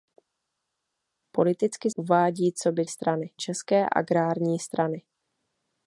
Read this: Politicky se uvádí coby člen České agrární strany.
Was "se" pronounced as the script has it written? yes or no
no